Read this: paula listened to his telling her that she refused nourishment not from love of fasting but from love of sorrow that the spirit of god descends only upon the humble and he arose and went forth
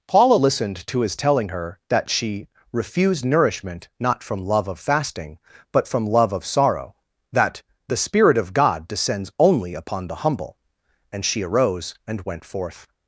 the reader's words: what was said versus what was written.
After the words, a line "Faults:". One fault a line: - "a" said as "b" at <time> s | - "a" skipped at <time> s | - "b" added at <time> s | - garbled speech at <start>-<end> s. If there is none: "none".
paula listened to his telling her that she refused nourishment not from love of fasting but from love of sorrow that the spirit of god descends only upon the humble and she arose and went forth
Faults:
- "he" said as "she" at 11.2 s